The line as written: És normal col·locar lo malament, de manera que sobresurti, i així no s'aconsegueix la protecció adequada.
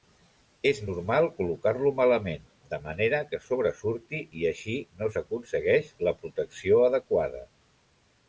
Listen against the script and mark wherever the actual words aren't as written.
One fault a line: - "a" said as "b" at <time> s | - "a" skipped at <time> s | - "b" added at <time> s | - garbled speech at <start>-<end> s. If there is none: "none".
none